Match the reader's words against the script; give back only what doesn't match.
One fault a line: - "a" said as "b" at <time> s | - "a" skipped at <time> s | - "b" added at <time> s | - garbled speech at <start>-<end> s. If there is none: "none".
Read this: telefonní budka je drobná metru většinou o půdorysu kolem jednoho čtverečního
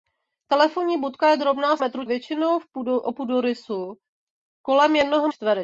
none